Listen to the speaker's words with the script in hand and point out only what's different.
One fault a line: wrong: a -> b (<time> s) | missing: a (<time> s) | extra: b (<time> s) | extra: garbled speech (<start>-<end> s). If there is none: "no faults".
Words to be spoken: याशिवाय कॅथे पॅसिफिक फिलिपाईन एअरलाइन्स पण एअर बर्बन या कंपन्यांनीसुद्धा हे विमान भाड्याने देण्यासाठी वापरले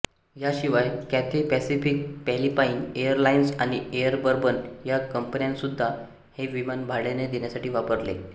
wrong: पण -> आणि (3.6 s)